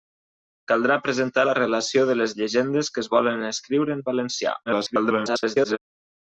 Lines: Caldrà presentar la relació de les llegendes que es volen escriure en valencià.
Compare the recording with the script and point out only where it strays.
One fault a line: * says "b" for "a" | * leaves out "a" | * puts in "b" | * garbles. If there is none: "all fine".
* garbles